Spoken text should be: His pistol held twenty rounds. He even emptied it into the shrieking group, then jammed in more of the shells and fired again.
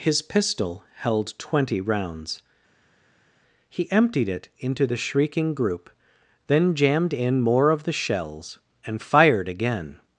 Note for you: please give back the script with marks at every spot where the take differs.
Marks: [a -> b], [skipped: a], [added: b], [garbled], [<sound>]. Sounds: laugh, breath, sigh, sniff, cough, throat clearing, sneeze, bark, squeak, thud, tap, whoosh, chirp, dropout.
His pistol held twenty rounds. He [skipped: even] emptied it into the shrieking group, then jammed in more of the shells and fired again.